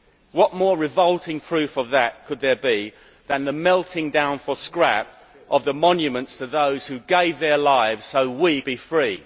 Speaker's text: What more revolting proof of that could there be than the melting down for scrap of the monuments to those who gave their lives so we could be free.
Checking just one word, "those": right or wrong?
right